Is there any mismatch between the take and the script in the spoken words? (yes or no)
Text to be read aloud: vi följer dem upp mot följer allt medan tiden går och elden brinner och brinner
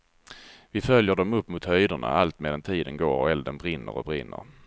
yes